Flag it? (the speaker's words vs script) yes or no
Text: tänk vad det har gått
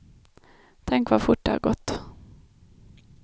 yes